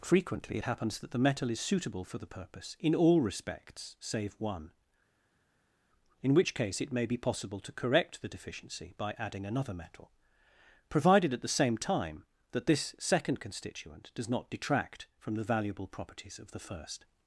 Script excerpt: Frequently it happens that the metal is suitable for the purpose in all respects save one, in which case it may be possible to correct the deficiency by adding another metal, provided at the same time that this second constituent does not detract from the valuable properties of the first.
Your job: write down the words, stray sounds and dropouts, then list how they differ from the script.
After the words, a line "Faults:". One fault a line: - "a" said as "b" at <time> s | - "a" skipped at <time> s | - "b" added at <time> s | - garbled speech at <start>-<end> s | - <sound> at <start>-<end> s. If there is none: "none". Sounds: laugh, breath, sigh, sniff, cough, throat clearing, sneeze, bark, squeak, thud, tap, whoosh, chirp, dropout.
Frequently it happens that the metal is suitable for the purpose in all respects save one, in which case it may be possible to correct the deficiency by adding another metal, provided at the same time that this second constituent does not detract from the valuable properties of the first.
Faults:
none